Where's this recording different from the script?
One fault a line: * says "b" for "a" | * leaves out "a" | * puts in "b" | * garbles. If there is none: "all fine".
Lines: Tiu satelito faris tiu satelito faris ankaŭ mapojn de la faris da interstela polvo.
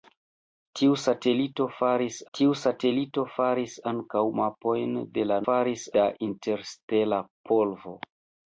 all fine